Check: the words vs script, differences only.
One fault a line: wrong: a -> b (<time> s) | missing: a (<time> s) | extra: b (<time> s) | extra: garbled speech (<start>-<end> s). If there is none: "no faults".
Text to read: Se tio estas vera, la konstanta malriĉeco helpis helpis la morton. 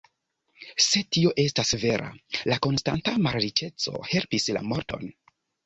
missing: helpis (4.5 s)